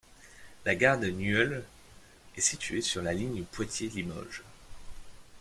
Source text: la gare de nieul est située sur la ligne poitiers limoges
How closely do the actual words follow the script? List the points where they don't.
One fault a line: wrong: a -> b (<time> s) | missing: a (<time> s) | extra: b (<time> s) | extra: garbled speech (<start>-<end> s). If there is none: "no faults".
no faults